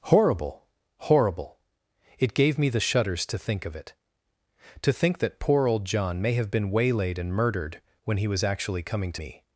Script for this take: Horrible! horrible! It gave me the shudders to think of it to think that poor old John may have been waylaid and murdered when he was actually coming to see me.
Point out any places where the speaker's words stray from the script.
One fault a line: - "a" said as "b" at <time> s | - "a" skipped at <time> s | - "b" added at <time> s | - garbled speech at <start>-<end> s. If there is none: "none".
- "see" skipped at 9.2 s